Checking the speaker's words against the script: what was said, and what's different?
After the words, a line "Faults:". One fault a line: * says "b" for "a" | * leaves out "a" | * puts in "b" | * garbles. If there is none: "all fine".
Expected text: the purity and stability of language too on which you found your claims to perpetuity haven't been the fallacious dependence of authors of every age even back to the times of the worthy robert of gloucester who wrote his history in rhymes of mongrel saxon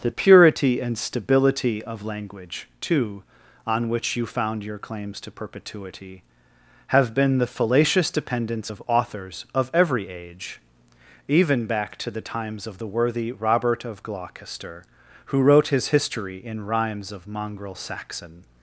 the purity and stability of language too on which you found your claims to perpetuity have been the fallacious dependence of authors of every age even back to the times of the worthy robert of gloucester who wrote his history in rhymes of mongrel saxon
Faults:
* says "have" for "haven't"